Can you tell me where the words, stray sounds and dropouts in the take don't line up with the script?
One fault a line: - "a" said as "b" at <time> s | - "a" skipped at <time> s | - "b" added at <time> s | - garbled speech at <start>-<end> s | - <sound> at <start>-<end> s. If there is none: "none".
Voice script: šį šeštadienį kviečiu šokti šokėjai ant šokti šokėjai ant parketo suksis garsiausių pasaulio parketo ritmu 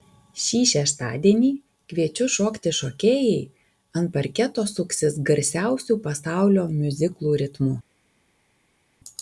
- "šokti šokėjai ant" skipped at 4.1 s
- "parketo" said as "miuziklų" at 6.8 s